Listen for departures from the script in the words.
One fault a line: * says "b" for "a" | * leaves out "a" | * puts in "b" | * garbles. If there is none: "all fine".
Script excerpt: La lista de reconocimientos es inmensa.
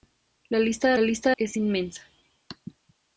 * says "lista" for "reconocimientos"